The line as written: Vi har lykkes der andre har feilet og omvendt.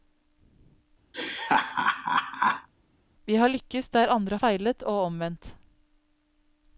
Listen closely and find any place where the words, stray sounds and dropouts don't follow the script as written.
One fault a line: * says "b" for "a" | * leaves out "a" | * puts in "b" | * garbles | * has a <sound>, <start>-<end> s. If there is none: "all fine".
* has a laugh, 1.1-2.7 s
* leaves out "har"